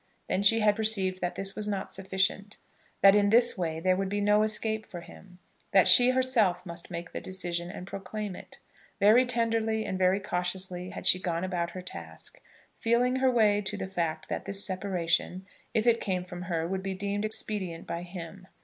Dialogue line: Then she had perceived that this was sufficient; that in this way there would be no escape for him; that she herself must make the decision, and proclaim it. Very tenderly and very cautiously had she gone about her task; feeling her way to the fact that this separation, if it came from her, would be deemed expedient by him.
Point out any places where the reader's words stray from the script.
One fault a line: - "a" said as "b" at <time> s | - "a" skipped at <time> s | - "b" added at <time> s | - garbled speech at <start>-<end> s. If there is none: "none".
- "not" added at 1.7 s